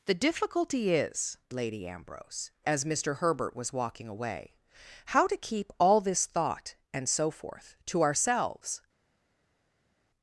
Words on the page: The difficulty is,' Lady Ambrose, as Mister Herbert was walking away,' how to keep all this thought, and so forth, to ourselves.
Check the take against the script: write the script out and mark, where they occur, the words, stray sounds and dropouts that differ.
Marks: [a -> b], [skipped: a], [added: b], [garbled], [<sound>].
The difficulty is,' Lady Ambrose, as Mister Herbert was walking away,' how to keep all this thought, and so forth, to ourselves.